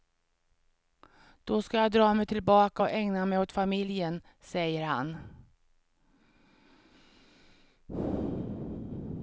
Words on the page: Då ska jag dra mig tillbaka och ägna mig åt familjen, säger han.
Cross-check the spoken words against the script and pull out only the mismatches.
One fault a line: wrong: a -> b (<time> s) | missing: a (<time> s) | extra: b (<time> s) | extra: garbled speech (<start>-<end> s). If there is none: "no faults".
no faults